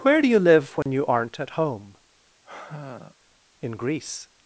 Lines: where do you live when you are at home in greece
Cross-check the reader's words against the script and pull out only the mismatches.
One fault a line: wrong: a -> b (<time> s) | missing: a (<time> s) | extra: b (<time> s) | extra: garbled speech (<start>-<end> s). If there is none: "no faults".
wrong: are -> aren't (1.1 s)